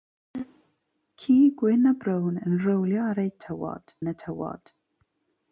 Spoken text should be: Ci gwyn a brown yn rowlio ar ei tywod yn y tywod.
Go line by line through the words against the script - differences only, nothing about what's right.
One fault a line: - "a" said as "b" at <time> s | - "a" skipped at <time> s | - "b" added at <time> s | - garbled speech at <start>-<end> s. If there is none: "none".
none